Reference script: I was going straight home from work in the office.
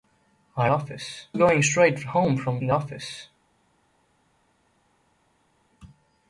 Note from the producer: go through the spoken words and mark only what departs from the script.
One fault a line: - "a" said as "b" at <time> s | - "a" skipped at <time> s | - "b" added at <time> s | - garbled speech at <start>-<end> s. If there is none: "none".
- "was" said as "office" at 0.7 s
- "work" skipped at 2.6 s